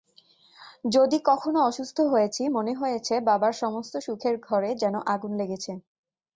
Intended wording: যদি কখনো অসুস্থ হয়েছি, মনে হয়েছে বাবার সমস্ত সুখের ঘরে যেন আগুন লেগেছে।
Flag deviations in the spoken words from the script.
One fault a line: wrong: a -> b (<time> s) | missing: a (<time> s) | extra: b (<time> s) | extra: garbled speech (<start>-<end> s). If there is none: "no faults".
no faults